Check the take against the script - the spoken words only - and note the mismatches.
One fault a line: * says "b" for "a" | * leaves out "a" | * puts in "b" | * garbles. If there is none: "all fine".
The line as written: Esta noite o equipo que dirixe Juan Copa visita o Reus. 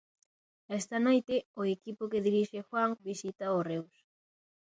* leaves out "Copa"